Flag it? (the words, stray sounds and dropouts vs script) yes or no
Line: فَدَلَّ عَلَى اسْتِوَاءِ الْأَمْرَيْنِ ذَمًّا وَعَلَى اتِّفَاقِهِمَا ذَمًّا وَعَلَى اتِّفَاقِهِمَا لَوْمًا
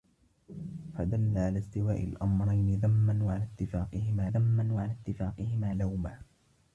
no